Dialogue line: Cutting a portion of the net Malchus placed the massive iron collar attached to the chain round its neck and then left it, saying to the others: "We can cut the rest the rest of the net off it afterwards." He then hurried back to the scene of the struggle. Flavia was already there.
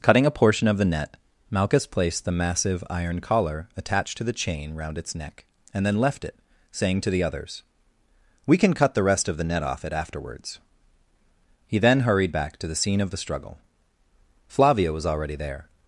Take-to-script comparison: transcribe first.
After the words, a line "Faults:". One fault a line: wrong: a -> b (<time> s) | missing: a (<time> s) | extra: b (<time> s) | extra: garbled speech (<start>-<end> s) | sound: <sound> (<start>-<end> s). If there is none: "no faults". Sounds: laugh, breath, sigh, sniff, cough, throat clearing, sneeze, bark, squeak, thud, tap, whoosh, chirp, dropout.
Cutting a portion of the net Malchus placed the massive iron collar attached to the chain round its neck and then left it, saying to the others: "We can cut the rest of the net off it afterwards." He then hurried back to the scene of the struggle. Flavia was already there.
Faults:
missing: the rest (9.3 s)